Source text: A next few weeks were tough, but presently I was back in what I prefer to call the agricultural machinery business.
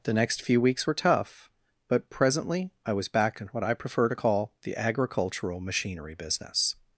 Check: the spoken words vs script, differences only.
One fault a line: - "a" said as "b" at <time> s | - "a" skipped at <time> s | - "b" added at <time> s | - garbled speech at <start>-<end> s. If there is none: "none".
- "A" said as "The" at 0.0 s